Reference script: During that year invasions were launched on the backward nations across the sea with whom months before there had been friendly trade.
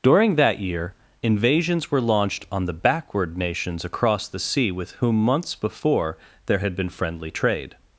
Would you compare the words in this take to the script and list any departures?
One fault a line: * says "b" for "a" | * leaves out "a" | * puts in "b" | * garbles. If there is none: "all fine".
all fine